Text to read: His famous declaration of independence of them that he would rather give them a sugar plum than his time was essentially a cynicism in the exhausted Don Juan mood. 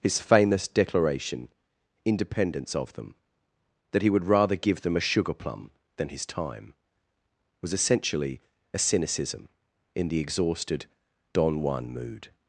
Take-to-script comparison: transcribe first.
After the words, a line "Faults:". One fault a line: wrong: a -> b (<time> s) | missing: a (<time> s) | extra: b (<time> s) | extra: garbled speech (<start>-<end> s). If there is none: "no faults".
His famous declaration independence of them that he would rather give them a sugar plum than his time was essentially a cynicism in the exhausted Don Juan mood.
Faults:
missing: of (1.5 s)